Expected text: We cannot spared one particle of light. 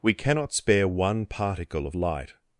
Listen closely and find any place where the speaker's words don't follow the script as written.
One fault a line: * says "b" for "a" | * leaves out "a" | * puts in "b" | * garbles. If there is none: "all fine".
* says "spare" for "spared"